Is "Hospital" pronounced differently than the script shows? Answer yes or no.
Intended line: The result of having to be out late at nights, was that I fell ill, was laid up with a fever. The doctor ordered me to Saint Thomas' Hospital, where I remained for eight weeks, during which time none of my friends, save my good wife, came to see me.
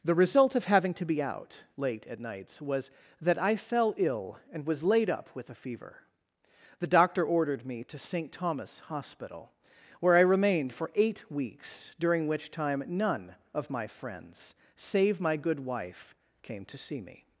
no